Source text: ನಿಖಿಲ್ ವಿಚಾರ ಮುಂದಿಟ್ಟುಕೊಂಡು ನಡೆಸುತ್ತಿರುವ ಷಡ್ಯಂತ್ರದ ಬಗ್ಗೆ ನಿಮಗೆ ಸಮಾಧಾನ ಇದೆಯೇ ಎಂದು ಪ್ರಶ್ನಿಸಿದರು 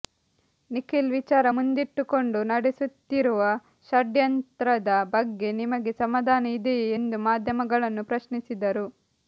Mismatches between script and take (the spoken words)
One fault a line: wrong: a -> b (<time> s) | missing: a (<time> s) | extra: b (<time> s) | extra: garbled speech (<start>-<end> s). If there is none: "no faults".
extra: ಮಾಧ್ಯಮಗಳನ್ನು (7.3 s)